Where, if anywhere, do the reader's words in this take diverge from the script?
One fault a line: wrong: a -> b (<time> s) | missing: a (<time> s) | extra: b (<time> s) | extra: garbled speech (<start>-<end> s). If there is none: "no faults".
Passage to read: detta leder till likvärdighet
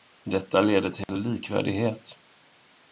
no faults